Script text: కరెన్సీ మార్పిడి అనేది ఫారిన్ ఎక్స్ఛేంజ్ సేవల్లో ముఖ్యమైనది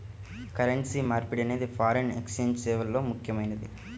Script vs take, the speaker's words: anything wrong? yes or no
no